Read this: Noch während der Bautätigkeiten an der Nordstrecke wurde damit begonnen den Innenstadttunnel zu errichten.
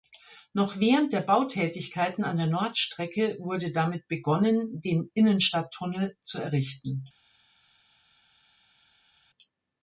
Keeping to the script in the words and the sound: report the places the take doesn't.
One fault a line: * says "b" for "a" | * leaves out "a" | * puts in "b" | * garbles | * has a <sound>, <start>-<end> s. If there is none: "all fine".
all fine